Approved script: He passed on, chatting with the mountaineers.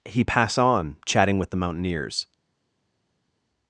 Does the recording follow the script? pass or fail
fail